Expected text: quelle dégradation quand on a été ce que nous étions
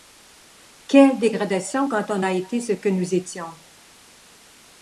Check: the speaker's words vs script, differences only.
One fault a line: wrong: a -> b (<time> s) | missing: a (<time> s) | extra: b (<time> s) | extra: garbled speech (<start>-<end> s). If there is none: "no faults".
no faults